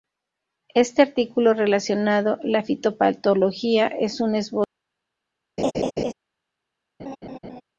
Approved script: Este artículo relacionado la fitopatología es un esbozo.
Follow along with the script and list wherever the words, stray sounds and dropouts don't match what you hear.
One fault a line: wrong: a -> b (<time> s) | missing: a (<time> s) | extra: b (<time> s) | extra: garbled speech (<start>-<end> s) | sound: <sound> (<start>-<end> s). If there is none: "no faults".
sound: laugh (5.6-6.1 s)
sound: laugh (7.0-7.6 s)